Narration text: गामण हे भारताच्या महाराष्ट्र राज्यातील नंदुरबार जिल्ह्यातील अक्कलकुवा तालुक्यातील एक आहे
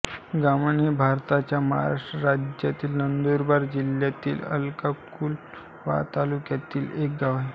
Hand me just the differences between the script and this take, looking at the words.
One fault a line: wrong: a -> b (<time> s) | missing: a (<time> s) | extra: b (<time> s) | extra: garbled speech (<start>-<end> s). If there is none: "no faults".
extra: गाव (7.2 s)